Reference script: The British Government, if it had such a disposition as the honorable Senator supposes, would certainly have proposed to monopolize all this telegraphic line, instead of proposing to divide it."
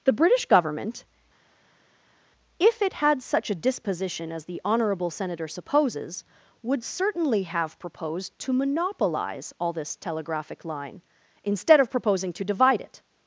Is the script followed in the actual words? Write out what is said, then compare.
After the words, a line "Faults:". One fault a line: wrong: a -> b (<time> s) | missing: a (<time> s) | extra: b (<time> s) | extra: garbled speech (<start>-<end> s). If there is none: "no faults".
The British Government, if it had such a disposition as the honorable Senator supposes, would certainly have proposed to monopolize all this telegraphic line, instead of proposing to divide it."
Faults:
no faults